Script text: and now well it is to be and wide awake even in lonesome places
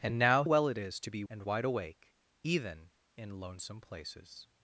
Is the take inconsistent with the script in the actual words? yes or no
no